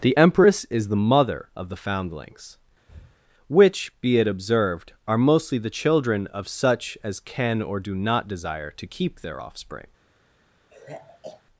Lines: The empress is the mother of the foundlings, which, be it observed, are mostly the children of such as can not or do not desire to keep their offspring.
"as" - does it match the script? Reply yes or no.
yes